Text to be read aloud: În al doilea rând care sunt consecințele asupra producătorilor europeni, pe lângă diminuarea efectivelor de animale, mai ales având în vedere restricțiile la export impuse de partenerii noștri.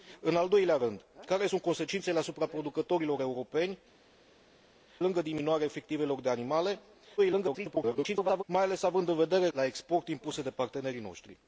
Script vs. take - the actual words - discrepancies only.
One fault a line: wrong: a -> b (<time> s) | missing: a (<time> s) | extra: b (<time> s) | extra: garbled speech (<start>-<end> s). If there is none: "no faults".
missing: pe (3.8 s)
extra: garbled speech (7.2-8.4 s)
missing: restricțiile (9.5 s)